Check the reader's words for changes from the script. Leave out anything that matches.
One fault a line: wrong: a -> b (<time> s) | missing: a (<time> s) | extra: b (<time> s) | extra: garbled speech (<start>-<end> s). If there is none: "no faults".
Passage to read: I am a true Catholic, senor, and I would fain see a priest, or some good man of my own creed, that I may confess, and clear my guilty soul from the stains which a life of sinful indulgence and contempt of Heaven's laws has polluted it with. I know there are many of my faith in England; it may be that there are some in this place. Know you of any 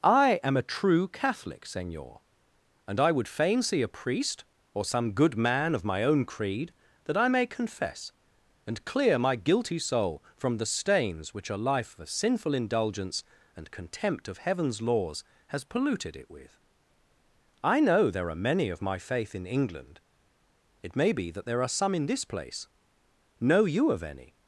no faults